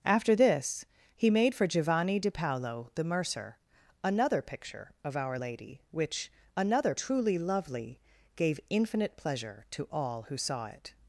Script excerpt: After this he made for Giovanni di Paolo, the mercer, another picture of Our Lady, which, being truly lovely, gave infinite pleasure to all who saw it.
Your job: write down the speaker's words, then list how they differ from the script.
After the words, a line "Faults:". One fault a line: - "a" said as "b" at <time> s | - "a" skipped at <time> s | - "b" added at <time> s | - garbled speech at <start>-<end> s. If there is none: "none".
After this he made for Giovanni di Paolo, the mercer, another picture of Our Lady, which, another truly lovely, gave infinite pleasure to all who saw it.
Faults:
- "being" said as "another" at 6.6 s